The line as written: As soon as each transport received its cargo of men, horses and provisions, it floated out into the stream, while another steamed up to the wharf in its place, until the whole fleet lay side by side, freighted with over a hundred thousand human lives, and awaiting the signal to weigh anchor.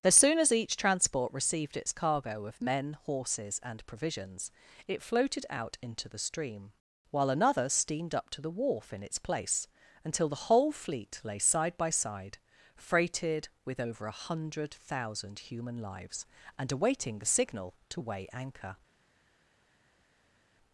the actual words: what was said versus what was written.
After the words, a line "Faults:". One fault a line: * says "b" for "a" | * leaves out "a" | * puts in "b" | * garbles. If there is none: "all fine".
As soon as each transport received its cargo of men, horses and provisions, it floated out into the stream, while another steamed up to the wharf in its place, until the whole fleet lay side by side, freighted with over a hundred thousand human lives, and awaiting the signal to weigh anchor.
Faults:
all fine